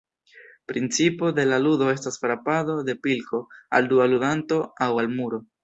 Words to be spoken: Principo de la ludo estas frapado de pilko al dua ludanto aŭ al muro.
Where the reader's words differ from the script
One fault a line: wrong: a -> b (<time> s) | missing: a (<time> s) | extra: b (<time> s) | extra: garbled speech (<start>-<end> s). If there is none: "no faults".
no faults